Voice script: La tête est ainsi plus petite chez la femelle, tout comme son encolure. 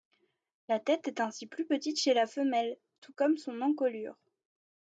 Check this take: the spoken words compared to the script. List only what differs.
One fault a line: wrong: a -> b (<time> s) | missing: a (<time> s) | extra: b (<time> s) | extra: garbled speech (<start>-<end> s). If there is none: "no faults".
no faults